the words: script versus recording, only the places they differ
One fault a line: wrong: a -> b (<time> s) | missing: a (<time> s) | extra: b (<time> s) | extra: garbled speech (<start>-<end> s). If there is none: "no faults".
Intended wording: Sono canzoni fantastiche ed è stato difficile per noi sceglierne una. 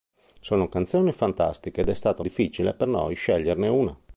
no faults